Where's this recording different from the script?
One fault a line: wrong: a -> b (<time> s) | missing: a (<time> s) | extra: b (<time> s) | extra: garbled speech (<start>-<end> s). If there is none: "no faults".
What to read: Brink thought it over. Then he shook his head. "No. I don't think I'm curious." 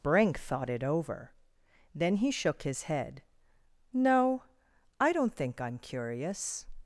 no faults